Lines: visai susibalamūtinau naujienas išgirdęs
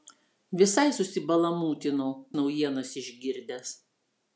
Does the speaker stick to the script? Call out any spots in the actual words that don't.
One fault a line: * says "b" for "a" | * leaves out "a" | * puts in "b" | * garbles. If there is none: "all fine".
all fine